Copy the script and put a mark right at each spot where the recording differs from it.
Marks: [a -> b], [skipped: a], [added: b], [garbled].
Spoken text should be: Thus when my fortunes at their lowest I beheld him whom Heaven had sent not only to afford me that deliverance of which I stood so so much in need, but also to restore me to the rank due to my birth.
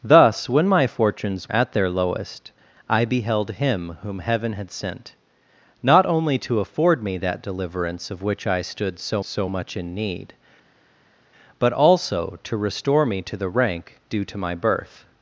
Thus when my fortunes at their lowest I beheld him whom Heaven had sent not only to afford me that deliverance of which I stood so so much in need, but also to restore me to the rank due to my birth.